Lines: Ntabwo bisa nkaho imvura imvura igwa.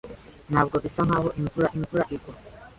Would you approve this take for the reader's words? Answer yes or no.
yes